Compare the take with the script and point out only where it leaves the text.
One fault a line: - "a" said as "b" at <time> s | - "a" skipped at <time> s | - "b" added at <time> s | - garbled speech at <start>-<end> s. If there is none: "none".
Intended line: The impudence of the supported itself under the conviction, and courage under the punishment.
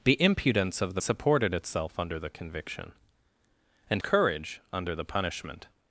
none